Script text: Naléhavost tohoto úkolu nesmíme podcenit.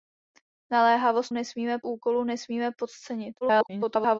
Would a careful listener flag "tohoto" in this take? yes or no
yes